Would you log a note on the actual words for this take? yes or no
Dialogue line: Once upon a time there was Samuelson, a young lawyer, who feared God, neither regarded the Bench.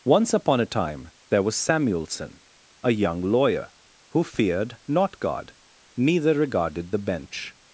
yes